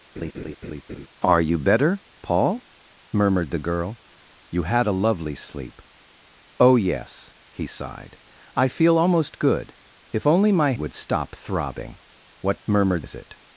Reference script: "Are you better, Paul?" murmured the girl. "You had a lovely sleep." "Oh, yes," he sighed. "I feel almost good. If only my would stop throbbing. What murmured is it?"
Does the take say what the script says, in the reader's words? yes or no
yes